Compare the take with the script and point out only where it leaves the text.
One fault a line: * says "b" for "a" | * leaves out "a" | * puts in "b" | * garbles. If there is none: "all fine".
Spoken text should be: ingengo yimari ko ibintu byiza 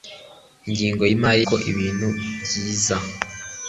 all fine